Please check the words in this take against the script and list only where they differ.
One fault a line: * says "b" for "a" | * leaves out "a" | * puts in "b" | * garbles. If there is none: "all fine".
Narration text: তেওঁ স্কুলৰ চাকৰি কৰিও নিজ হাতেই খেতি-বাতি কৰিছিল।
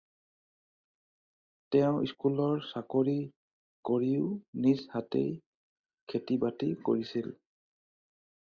all fine